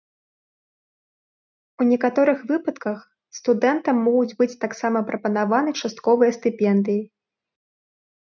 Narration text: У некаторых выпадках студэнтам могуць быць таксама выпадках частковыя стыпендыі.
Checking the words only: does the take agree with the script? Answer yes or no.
no